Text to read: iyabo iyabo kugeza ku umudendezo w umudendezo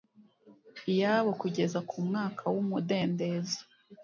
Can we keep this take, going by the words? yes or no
no